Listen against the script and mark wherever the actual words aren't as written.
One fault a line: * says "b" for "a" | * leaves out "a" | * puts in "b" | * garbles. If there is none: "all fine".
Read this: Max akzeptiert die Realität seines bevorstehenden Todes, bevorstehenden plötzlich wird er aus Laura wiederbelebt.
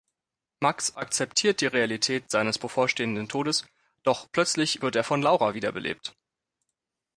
* says "doch" for "bevorstehenden"
* says "von" for "aus"